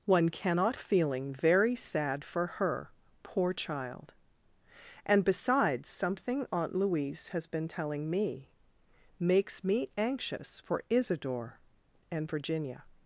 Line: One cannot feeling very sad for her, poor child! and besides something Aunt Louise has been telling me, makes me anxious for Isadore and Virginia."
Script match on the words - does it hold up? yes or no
yes